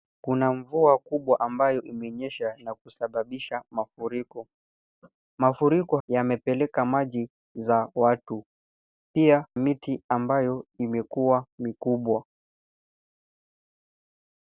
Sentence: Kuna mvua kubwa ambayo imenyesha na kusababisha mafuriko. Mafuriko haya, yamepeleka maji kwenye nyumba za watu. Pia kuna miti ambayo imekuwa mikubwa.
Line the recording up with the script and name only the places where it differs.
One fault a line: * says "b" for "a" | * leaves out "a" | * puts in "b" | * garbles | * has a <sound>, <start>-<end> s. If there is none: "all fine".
* leaves out "haya"
* leaves out "kwenye nyumba"
* leaves out "kuna"